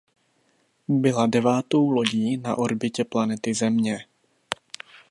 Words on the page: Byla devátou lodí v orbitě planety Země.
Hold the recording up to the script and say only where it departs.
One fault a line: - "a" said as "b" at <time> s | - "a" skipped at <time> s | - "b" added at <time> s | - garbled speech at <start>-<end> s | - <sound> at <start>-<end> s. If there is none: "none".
- "v" said as "na" at 2.4 s